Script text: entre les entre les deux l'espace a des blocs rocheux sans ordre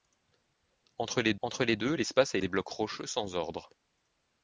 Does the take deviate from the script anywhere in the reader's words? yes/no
no